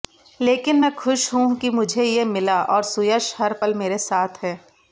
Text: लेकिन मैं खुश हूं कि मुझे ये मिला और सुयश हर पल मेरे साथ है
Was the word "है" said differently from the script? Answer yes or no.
no